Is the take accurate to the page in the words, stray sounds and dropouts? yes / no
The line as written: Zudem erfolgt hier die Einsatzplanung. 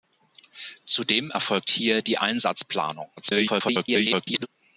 no